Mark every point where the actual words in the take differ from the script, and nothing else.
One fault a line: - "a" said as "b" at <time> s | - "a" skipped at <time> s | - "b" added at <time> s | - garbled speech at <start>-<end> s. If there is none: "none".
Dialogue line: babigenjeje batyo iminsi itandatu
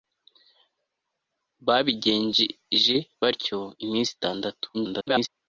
- garbled speech at 4.7-5.3 s